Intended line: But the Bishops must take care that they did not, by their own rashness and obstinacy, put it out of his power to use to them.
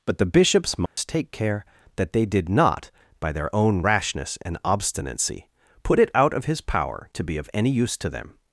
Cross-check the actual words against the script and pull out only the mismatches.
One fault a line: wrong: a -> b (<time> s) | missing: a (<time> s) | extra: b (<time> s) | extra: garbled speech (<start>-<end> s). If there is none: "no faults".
extra: be of any (7.2 s)